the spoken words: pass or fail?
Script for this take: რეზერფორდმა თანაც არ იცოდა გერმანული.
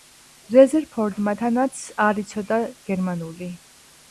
pass